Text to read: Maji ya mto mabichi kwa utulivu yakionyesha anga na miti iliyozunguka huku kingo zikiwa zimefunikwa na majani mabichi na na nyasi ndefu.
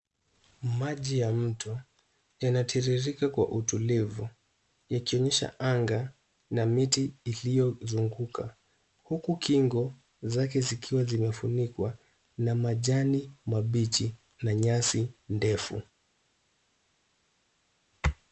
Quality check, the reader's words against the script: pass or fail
fail